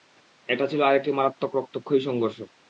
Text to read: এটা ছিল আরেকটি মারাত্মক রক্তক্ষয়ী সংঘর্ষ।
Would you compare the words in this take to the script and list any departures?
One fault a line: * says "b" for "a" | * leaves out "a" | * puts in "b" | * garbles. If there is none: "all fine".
all fine